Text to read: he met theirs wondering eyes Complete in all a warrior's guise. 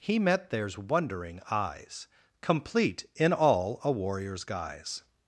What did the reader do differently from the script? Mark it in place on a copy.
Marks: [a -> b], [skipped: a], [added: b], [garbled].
he met theirs wondering eyes Complete in all a warrior's guise.